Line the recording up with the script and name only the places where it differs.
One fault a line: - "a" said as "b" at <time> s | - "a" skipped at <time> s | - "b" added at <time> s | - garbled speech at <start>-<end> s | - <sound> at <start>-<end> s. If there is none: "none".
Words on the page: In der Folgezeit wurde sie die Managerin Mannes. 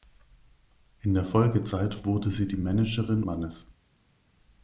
none